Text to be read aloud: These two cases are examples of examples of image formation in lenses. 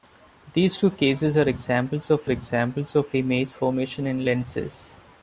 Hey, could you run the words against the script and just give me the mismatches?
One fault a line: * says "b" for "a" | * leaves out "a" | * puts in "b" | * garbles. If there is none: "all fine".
all fine